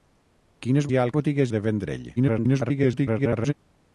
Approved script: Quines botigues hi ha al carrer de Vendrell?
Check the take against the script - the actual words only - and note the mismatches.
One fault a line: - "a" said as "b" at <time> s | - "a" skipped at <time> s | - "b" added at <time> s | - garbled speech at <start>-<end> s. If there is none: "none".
- "botigues" skipped at 0.9 s
- "carrer" said as "botigues" at 1.2 s
- garbled speech at 2.2-3.5 s